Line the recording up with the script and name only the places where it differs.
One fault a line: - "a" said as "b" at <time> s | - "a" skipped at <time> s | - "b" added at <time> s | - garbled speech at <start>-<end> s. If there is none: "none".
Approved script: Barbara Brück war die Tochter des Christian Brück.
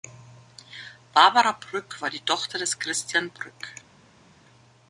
none